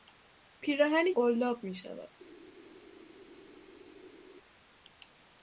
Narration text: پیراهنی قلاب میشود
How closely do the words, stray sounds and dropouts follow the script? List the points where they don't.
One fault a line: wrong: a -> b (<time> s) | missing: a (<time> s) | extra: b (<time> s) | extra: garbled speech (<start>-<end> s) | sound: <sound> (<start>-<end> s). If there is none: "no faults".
no faults